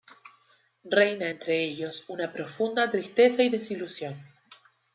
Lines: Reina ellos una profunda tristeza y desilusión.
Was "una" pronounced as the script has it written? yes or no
yes